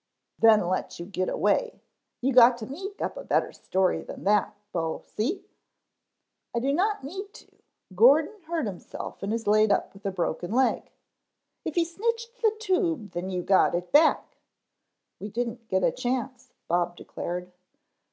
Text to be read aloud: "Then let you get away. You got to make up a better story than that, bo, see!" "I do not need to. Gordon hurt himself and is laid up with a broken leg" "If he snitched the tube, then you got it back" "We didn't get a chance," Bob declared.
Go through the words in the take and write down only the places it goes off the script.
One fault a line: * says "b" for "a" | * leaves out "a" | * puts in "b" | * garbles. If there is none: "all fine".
* says "need" for "make"